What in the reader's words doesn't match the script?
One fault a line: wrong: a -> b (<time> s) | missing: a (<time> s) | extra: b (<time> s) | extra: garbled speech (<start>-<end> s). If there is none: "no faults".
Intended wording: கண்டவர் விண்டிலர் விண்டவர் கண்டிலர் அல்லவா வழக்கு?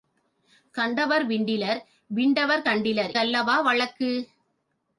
no faults